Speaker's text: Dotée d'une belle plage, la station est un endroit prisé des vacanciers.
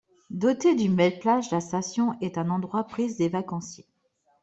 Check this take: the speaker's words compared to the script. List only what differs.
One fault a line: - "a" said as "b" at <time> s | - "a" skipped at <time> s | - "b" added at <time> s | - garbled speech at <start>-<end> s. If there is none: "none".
none